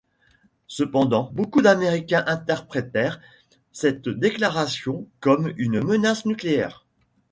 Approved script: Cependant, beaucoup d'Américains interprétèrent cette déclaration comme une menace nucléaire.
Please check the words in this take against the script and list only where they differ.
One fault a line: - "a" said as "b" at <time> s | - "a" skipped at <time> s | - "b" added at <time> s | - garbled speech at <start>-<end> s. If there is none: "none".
none